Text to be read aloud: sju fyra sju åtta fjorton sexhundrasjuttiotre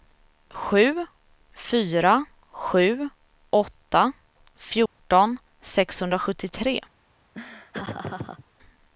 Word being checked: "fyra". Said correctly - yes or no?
yes